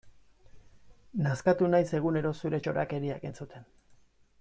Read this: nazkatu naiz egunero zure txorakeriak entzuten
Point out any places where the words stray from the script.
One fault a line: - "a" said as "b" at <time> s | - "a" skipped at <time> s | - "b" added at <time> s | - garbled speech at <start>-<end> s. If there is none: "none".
none